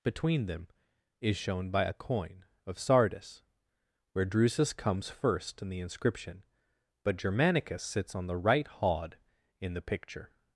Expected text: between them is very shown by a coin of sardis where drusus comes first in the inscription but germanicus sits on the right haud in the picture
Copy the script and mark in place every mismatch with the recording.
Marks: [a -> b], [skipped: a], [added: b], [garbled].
between them is [skipped: very] shown by a coin of sardis where drusus comes first in the inscription but germanicus sits on the right haud in the picture